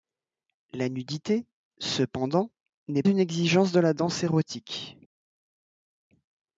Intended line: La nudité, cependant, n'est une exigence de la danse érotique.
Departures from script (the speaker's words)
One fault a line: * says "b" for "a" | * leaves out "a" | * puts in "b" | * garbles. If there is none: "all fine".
all fine